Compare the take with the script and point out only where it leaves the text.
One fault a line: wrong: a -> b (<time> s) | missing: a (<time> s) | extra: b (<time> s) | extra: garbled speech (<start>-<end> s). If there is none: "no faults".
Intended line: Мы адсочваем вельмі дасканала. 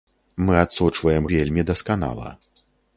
no faults